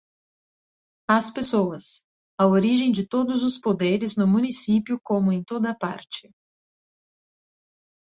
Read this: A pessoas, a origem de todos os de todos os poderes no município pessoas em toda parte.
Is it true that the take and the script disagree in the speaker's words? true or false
true